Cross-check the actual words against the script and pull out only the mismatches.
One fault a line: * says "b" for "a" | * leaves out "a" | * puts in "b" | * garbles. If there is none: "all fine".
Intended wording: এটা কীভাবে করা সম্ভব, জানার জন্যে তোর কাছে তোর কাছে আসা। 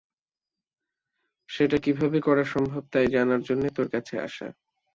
* says "সেটা" for "এটা"
* puts in "তাই"
* leaves out "তোর কাছে"